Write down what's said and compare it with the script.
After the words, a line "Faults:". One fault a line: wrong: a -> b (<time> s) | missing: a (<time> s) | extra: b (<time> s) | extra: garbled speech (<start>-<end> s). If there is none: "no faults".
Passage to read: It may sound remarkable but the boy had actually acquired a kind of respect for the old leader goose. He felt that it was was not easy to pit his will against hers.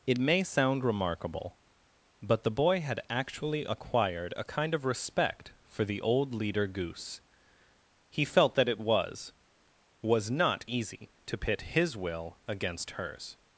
It may sound remarkable but the boy had actually acquired a kind of respect for the old leader goose. He felt that it was was not easy to pit his will against hers.
Faults:
no faults